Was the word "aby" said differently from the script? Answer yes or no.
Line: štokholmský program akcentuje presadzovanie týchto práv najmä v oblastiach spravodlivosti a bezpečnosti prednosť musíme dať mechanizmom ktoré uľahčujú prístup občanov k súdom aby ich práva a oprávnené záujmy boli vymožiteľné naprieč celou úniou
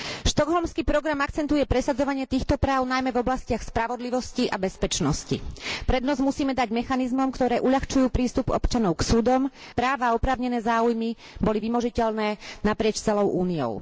yes